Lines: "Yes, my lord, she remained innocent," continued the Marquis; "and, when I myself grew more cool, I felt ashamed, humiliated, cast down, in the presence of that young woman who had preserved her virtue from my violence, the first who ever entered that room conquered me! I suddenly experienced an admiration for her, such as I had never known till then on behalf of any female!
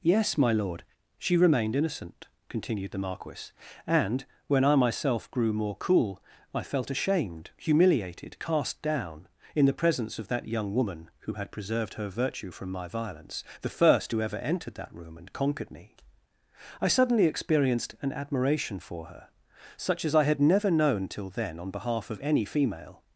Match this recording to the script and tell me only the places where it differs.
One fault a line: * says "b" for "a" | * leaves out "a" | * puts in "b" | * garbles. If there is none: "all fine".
* puts in "and"